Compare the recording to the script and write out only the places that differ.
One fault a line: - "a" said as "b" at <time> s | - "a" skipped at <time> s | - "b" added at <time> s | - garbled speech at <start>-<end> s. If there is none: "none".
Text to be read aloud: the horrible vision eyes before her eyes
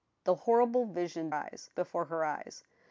none